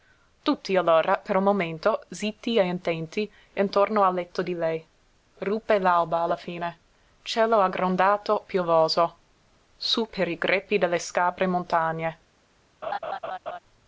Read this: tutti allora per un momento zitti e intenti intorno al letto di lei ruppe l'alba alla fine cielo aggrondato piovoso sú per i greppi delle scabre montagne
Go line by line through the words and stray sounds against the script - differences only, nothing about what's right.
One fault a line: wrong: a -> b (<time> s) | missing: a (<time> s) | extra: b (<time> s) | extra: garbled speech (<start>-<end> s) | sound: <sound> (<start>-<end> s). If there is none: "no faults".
sound: laugh (12.8-13.6 s)